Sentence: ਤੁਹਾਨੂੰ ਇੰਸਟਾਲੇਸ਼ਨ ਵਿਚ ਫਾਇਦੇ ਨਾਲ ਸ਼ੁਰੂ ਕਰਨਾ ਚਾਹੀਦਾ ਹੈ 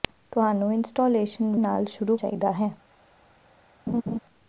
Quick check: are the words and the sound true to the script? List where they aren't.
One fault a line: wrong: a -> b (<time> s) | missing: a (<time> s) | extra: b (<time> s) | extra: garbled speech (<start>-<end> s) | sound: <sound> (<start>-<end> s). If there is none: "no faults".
missing: ਵਿਚ ਫਾਇਦੇ (1.6 s)
missing: ਕਰਨਾ (2.2 s)
sound: laugh (3.9-4.2 s)